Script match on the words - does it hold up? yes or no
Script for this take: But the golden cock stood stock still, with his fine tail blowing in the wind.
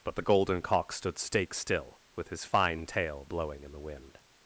no